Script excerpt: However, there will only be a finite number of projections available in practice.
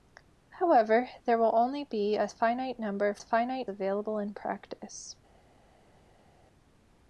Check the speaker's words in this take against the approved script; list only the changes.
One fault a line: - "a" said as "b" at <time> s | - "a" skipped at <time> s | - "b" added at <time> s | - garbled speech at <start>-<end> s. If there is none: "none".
- "projections" said as "finite" at 3.2 s